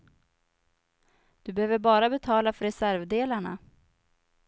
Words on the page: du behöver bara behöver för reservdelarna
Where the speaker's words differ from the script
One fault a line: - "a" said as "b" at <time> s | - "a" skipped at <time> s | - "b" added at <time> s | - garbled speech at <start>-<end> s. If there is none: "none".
- "behöver" said as "betala" at 2.1 s